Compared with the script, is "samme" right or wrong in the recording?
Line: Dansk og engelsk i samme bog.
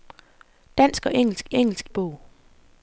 wrong